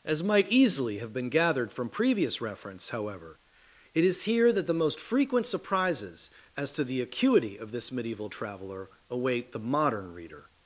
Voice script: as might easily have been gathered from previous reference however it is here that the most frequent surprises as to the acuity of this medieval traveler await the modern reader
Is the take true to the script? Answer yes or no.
yes